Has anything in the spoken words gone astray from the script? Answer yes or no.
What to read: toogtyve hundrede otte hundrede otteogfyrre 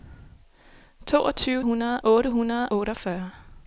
no